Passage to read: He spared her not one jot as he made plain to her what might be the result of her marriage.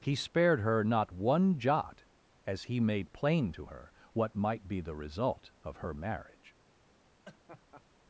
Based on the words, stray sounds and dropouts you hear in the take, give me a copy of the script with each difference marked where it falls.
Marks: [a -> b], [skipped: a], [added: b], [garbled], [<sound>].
He spared her not one jot as he made plain to her what might be the result of her marriage. [laugh]